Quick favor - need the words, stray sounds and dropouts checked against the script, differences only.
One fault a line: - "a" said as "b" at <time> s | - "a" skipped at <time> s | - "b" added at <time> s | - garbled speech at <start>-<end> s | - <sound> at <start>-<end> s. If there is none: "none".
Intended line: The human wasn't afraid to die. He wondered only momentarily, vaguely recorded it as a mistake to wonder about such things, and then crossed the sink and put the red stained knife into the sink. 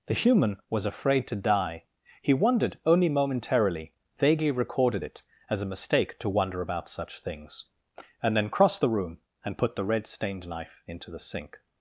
- "wasn't" said as "was" at 0.7 s
- "sink" said as "room" at 8.9 s